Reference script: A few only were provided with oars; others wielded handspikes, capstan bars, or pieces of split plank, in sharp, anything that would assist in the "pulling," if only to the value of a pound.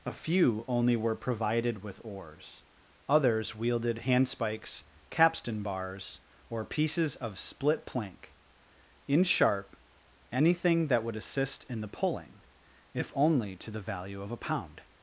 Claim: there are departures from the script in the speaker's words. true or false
false